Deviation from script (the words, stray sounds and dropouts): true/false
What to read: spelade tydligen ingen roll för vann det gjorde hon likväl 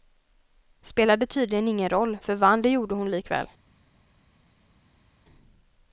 false